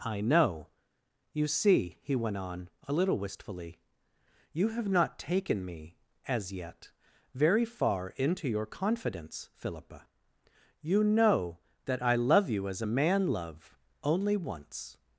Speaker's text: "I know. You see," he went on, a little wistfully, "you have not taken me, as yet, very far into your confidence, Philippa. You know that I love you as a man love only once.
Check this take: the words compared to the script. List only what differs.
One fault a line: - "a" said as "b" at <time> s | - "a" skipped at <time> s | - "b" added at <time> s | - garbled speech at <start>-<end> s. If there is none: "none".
none